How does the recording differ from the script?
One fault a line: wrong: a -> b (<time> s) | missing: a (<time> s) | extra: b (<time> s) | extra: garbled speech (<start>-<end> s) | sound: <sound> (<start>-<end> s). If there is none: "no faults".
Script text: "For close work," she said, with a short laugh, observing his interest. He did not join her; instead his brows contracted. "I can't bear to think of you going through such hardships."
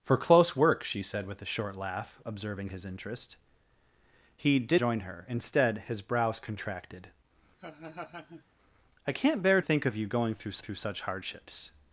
missing: not (4.8 s)
sound: laugh (7.6-8.4 s)
missing: to (9.6 s)
extra: through (10.6 s)